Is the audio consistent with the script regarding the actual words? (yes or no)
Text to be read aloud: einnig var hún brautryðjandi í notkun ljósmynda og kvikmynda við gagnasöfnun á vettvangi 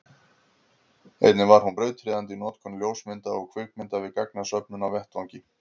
yes